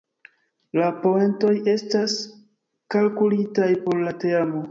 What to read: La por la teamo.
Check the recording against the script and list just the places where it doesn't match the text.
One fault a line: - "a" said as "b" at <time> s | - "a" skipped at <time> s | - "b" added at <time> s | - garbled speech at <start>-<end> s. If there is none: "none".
- "poentoj estas kalkulitaj" added at 1.0 s